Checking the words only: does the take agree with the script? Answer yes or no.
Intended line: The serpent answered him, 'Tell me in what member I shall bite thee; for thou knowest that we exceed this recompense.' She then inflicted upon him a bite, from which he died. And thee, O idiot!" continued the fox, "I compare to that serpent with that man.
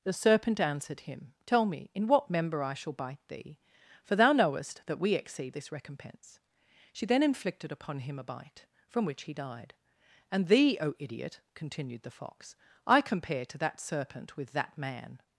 yes